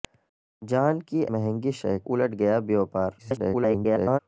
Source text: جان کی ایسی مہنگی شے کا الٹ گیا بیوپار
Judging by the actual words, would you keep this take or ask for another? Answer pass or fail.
fail